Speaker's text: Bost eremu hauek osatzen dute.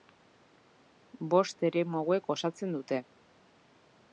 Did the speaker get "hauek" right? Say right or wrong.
right